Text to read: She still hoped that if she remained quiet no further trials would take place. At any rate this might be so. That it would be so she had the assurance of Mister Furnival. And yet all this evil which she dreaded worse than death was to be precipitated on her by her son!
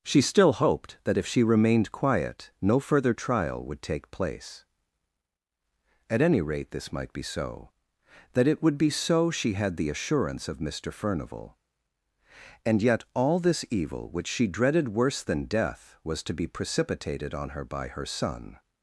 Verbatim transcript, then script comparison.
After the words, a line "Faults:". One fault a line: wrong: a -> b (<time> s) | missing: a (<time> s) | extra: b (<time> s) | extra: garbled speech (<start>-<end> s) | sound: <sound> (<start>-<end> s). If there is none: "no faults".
She still hoped that if she remained quiet no further trial would take place. At any rate this might be so. That it would be so she had the assurance of Mister Furnival. And yet all this evil which she dreaded worse than death was to be precipitated on her by her son!
Faults:
wrong: trials -> trial (3.1 s)